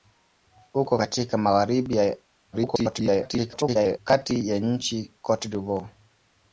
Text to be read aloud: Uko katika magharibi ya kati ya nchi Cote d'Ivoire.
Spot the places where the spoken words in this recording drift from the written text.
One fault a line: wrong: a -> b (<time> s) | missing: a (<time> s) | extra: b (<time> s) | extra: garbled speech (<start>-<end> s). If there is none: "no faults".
extra: garbled speech (2.5-4.0 s)